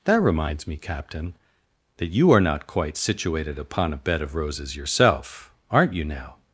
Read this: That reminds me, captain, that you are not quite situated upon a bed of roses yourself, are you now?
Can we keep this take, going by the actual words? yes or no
no